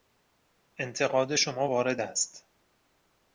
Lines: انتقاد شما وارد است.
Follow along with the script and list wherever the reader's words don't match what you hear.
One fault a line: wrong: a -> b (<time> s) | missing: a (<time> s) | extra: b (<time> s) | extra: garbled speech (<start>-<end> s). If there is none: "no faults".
no faults